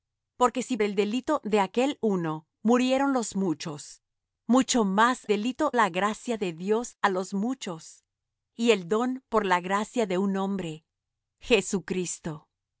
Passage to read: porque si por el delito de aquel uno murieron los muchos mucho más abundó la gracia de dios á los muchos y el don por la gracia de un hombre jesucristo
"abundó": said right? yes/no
no